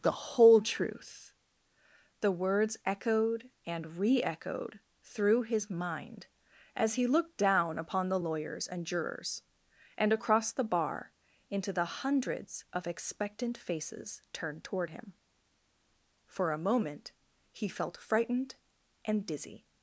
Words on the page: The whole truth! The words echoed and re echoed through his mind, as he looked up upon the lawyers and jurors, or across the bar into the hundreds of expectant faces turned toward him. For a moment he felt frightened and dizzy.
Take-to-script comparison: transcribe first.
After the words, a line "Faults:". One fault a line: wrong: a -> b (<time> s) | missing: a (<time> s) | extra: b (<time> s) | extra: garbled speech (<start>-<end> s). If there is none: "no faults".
The whole truth! The words echoed and re echoed through his mind, as he looked down upon the lawyers and jurors, and across the bar into the hundreds of expectant faces turned toward him. For a moment he felt frightened and dizzy.
Faults:
wrong: up -> down (7.4 s)
wrong: or -> and (10.0 s)